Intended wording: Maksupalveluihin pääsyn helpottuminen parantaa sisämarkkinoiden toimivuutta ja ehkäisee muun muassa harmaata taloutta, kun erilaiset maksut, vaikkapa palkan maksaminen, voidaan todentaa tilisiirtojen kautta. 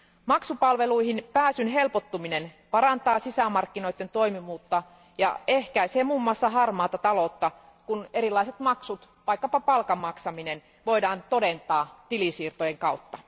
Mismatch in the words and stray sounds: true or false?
false